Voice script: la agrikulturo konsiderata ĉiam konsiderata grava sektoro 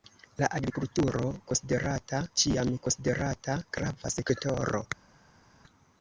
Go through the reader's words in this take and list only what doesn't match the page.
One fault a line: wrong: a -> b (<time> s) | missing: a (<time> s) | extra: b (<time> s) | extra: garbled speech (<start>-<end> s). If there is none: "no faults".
no faults